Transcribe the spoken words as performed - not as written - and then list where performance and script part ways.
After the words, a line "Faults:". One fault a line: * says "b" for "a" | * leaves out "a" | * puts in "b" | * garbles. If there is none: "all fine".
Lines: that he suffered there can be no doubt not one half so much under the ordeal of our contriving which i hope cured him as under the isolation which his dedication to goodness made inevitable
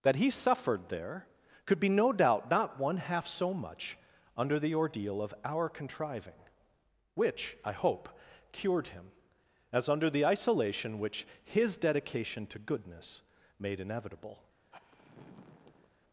that he suffered there could be no doubt not one half so much under the ordeal of our contriving which i hope cured him as under the isolation which his dedication to goodness made inevitable
Faults:
* says "could" for "can"